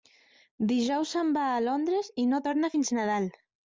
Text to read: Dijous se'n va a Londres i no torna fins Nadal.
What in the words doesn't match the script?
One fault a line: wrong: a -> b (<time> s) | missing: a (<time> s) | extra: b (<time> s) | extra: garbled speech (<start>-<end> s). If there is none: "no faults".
no faults